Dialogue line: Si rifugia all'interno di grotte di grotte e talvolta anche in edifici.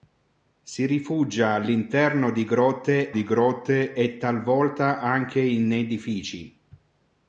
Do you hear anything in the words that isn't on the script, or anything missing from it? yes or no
no